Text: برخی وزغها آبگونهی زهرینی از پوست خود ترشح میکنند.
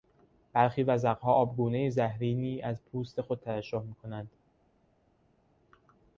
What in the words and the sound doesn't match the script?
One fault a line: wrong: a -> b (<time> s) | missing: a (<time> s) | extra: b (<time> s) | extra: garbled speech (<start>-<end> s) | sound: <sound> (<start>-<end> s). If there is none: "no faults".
no faults